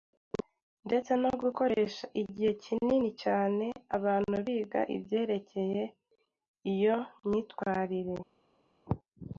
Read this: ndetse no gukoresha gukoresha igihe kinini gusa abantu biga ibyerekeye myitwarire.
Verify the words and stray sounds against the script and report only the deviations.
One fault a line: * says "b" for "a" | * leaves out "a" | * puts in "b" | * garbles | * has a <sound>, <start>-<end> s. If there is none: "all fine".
* leaves out "gukoresha"
* says "cyane" for "gusa"
* puts in "iyo"